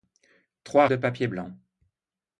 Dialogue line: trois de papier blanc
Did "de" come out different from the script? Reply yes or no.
no